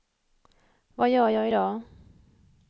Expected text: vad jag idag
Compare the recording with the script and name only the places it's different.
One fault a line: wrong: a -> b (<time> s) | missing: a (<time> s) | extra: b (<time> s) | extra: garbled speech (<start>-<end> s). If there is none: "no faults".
extra: gör (1.1 s)